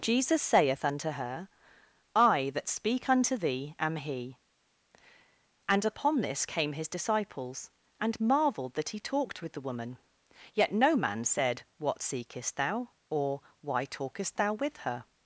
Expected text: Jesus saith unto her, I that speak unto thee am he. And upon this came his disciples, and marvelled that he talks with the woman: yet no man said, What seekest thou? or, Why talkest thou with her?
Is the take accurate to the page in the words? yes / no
no